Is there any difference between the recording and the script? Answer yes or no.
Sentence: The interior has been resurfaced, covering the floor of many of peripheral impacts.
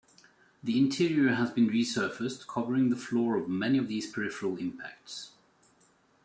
yes